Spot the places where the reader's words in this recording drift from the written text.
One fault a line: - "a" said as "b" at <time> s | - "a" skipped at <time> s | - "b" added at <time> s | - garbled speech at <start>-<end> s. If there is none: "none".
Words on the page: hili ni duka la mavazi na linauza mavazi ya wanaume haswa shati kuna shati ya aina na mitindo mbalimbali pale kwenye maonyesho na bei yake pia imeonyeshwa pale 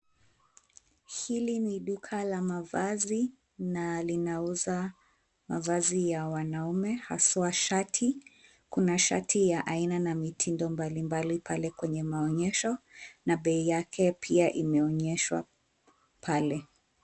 none